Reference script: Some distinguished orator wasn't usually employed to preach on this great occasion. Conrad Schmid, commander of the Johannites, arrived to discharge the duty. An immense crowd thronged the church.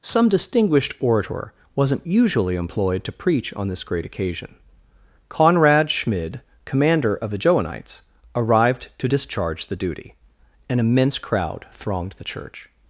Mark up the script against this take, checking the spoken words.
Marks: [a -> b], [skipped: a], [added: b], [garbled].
Some distinguished orator wasn't usually employed to preach on this great occasion. Conrad Schmid, commander of the Johannites, arrived to discharge the duty. An immense crowd thronged the church.